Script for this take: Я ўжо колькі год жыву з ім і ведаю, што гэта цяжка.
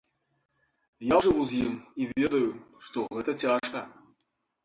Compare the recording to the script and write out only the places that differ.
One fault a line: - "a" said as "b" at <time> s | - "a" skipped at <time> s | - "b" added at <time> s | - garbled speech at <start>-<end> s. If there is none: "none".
- "ўжо колькі год" skipped at 1.1 s